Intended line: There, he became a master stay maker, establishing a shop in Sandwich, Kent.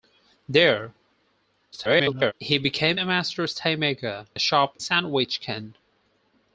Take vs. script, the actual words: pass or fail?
fail